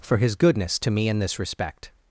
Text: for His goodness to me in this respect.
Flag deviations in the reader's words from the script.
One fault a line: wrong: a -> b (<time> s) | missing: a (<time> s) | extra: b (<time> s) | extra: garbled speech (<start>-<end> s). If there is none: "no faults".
no faults